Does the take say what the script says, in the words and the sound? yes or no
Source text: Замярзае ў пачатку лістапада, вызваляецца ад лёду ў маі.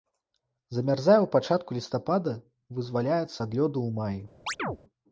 no